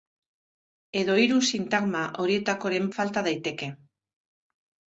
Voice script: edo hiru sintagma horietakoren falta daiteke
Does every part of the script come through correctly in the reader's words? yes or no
yes